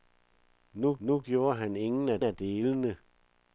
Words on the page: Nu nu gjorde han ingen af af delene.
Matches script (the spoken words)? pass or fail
pass